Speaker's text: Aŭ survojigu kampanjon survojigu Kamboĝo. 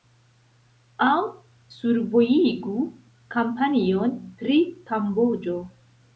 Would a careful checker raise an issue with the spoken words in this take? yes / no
yes